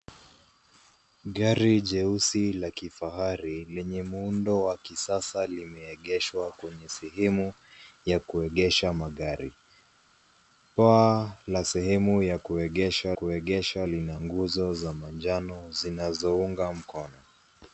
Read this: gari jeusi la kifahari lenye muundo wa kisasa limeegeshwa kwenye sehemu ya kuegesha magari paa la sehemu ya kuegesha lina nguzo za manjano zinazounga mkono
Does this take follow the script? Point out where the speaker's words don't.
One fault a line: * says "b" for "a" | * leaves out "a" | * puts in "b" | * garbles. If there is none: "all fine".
* puts in "kuegesha"